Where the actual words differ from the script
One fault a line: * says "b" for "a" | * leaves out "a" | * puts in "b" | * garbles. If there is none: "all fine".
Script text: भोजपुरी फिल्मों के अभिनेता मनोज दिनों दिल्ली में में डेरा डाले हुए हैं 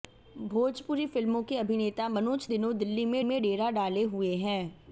all fine